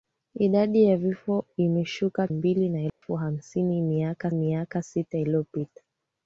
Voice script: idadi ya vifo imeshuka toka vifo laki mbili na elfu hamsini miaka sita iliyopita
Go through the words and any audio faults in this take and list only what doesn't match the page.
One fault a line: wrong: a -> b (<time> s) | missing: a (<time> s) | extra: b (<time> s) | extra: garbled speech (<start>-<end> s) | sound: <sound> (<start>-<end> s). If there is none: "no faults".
missing: toka vifo laki (2.3 s)
sound: dropout (2.9-3.0 s)
extra: miaka (4.3 s)